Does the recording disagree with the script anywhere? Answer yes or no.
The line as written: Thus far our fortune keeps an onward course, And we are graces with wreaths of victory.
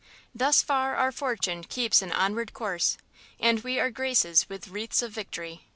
no